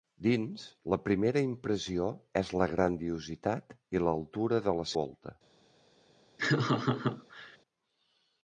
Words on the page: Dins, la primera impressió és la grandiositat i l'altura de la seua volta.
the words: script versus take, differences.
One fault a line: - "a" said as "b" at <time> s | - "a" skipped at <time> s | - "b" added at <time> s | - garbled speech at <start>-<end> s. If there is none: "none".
- "seua" skipped at 4.9 s